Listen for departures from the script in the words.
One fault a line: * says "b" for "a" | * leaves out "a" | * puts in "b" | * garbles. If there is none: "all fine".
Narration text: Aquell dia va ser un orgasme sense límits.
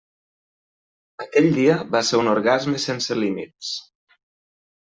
all fine